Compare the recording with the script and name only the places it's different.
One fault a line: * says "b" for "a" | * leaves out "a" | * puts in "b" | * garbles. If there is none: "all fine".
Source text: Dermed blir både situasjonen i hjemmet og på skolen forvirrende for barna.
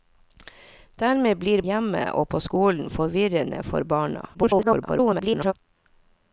* leaves out "både situasjonen i"
* garbles